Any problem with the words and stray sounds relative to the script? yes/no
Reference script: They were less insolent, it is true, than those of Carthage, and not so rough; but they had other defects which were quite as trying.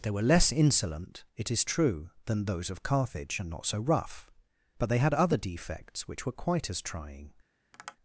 yes